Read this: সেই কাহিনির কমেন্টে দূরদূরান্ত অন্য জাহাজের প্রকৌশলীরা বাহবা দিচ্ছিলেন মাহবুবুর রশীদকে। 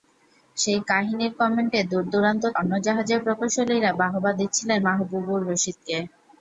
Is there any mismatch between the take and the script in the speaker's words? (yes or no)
no